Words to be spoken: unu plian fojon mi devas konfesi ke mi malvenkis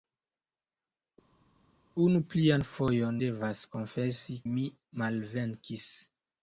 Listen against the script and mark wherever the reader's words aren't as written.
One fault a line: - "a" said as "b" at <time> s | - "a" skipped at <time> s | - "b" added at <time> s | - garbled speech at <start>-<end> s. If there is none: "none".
- "mi" skipped at 3.2 s
- "ke" skipped at 4.4 s